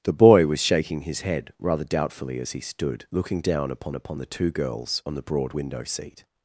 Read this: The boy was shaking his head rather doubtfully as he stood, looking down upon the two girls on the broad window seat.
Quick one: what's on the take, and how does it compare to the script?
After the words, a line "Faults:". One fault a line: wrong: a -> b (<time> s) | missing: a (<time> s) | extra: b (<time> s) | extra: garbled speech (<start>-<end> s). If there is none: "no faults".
The boy was shaking his head rather doubtfully as he stood, looking down upon upon the two girls on the broad window seat.
Faults:
extra: upon (3.9 s)